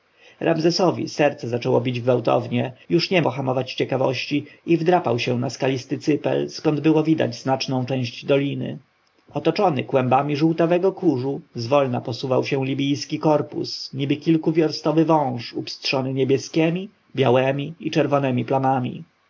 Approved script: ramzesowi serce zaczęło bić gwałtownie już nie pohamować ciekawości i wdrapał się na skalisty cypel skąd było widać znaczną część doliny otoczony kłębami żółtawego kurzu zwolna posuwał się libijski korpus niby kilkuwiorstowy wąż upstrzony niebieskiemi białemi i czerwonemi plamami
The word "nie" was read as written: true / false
true